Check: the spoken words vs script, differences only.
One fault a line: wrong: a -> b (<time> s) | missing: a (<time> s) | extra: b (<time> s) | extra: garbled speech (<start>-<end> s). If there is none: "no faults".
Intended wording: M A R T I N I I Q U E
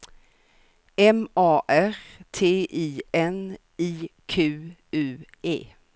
missing: I (4.1 s)